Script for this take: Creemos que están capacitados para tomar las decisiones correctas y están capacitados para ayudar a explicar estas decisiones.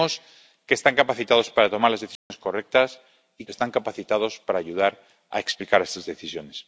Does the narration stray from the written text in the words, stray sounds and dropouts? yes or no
yes